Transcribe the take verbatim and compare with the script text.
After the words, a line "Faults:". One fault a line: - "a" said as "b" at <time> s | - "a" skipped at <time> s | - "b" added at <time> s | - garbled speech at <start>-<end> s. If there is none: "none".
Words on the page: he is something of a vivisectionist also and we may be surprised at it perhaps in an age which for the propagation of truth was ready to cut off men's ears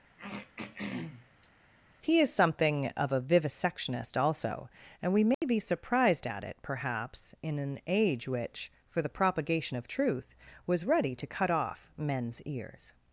he is something of a vivisectionist also and we may be surprised at it perhaps in an age which for the propagation of truth was ready to cut off men's ears
Faults:
none